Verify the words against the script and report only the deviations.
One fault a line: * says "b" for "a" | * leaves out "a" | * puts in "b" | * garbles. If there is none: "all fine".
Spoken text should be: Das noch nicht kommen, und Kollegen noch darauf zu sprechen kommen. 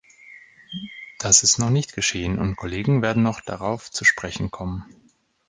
* puts in "ist"
* says "geschehen" for "kommen"
* puts in "werden"